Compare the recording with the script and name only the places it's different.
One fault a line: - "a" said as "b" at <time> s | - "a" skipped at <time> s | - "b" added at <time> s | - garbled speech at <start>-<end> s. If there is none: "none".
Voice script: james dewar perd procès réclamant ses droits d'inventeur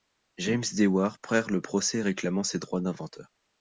- "le" added at 1.5 s